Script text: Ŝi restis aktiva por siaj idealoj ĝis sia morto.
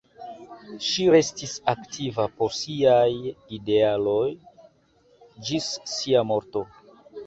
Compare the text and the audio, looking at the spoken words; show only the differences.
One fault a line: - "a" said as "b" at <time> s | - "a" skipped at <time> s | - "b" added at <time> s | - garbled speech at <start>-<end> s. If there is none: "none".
none